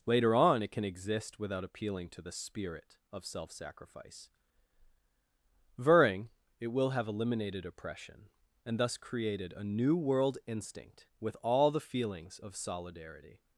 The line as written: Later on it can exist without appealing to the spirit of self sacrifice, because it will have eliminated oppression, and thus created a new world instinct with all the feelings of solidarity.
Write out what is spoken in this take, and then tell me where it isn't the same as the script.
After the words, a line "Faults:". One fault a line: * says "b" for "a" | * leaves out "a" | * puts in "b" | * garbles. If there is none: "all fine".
Later on it can exist without appealing to the spirit of self sacrifice, vering it will have eliminated oppression, and thus created a new world instinct with all the feelings of solidarity.
Faults:
* says "vering" for "because"